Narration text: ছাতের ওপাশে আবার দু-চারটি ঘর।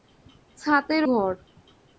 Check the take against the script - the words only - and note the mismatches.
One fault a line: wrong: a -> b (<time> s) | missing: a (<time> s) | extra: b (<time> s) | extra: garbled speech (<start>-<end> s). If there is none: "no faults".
missing: ওপাশে আবার দু-চারটি (1.0 s)